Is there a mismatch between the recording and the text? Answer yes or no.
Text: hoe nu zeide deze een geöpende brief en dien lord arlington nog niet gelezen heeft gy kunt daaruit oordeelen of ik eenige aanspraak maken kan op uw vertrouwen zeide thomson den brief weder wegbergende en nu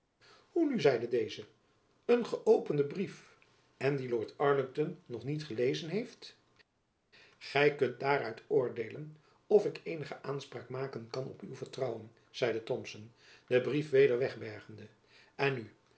no